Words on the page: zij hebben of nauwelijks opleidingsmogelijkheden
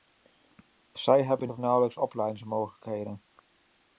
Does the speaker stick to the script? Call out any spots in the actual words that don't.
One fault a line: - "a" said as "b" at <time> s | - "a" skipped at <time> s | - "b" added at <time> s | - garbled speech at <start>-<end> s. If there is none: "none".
none